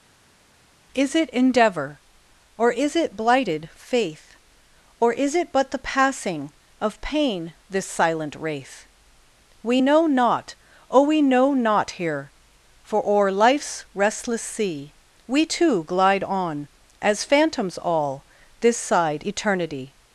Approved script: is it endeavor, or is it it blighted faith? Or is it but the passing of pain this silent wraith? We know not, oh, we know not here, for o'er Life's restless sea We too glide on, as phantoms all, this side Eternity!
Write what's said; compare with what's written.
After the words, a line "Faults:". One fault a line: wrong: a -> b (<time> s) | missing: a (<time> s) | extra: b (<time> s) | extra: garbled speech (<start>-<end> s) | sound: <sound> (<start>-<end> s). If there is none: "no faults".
is it endeavor, or is it blighted faith? Or is it but the passing of pain this silent wraith? We know not, oh, we know not here, for o'er Life's restless sea We too glide on, as phantoms all, this side Eternity!
Faults:
missing: it (3.1 s)